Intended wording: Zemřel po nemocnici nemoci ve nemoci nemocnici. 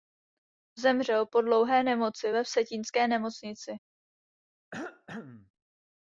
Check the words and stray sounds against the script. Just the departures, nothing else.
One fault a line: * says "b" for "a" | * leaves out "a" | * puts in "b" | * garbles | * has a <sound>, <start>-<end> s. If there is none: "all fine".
* says "dlouhé" for "nemocnici"
* says "vsetínské" for "nemoci"
* has a cough, 4.7-5.5 s